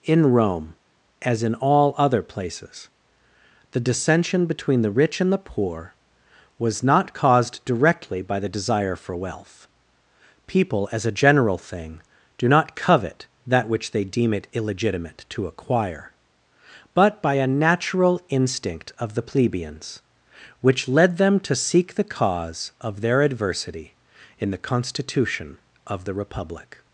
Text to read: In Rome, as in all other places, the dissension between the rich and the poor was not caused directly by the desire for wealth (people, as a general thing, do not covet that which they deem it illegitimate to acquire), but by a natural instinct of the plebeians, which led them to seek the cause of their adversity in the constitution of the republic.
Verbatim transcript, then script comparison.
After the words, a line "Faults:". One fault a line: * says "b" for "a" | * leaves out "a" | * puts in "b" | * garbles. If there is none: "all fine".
In Rome, as in all other places, the dissension between the rich and the poor was not caused directly by the desire for wealth (people, as a general thing, do not covet that which they deem it illegitimate to acquire), but by a natural instinct of the plebeians, which led them to seek the cause of their adversity in the constitution of the republic.
Faults:
all fine